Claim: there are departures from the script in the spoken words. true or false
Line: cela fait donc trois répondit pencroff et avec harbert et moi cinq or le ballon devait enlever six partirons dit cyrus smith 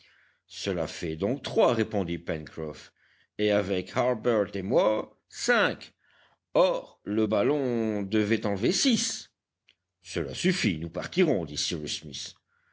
true